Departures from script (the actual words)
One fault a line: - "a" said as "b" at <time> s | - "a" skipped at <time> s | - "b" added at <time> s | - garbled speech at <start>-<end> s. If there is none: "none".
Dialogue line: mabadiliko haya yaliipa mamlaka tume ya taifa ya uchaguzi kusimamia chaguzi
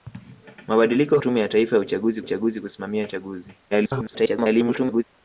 - "haya yaliipa mamlaka" skipped at 1.2 s
- "uchaguzi" added at 2.2 s
- garbled speech at 3.7-5.0 s